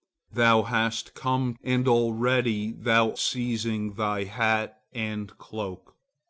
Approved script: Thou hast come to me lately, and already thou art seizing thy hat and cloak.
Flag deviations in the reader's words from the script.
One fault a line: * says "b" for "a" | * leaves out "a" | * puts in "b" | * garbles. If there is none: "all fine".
* leaves out "to me lately"
* leaves out "art"